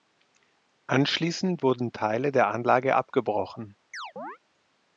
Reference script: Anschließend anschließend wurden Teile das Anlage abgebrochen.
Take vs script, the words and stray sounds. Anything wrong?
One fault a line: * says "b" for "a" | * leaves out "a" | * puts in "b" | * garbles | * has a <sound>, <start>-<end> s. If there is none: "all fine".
* leaves out "anschließend"
* says "der" for "das"
* has a chirp, 3.9-4.4 s